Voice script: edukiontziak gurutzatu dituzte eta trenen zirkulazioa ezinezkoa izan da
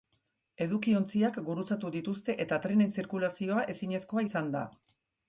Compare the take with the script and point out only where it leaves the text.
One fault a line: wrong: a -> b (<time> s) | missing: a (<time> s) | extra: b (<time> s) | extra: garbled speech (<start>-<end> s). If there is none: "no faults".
no faults